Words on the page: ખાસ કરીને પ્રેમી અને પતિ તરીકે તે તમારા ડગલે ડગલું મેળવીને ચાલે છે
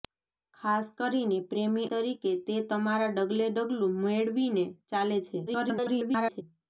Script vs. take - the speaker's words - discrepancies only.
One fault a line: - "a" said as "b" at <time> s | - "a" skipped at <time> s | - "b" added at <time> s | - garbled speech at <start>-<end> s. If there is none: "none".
- "અને પતિ" skipped at 1.9 s
- garbled speech at 5.5-6.4 s